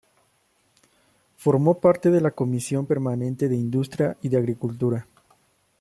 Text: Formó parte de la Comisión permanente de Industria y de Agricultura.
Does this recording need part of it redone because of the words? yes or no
no